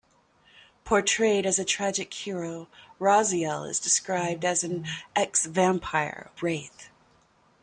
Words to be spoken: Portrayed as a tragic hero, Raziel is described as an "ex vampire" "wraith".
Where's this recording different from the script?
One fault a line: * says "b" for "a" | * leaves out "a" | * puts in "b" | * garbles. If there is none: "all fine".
all fine